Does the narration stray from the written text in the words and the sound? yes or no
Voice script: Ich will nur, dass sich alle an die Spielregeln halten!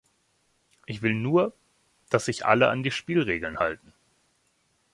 no